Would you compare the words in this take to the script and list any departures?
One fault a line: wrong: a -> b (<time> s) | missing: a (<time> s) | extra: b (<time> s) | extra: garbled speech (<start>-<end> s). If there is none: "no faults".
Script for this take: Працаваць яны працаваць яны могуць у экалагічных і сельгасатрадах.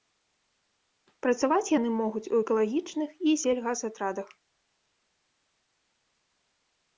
missing: працаваць яны (1.9 s)